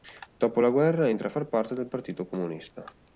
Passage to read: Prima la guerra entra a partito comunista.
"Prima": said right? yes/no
no